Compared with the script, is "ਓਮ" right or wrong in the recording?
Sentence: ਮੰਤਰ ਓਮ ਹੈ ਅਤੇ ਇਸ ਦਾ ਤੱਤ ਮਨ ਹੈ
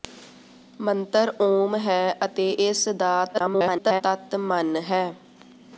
right